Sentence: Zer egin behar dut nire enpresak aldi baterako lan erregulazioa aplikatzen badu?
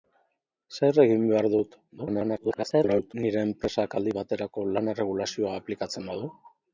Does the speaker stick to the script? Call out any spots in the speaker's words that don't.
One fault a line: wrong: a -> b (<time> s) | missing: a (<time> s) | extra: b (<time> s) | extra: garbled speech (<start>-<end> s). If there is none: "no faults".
extra: garbled speech (2.0-3.1 s)